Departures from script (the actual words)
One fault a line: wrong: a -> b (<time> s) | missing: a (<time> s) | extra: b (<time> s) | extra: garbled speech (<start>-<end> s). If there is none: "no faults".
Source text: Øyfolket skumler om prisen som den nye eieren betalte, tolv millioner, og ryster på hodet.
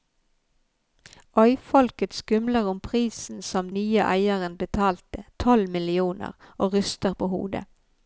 missing: den (3.7 s)